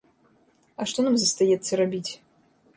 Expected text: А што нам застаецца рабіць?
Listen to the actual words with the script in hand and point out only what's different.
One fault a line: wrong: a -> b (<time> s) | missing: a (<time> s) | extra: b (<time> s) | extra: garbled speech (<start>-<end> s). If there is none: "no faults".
no faults